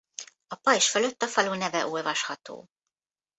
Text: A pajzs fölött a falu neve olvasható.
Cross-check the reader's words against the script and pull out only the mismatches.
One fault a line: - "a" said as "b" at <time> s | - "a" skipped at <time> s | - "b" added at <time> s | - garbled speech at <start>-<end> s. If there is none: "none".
none